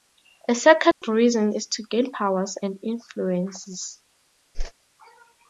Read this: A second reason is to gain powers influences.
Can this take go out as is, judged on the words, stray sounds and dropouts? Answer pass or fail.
fail